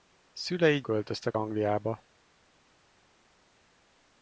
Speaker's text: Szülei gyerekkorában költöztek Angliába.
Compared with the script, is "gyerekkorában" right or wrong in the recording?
wrong